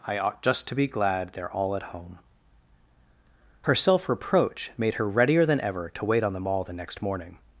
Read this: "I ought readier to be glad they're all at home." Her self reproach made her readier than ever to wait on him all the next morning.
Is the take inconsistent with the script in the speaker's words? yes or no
yes